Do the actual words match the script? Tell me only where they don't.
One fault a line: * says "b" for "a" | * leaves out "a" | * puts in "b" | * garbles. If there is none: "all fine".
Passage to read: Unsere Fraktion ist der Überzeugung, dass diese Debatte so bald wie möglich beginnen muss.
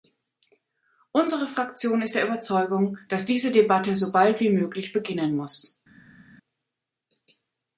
all fine